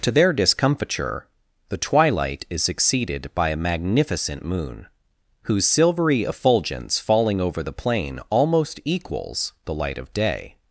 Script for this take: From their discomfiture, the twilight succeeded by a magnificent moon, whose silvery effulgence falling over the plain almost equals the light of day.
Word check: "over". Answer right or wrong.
right